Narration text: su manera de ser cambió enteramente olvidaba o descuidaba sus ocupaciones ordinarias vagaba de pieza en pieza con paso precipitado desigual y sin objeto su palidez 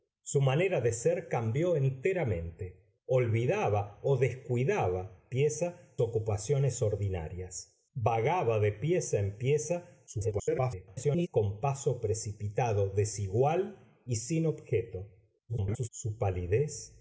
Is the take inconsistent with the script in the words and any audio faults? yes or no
yes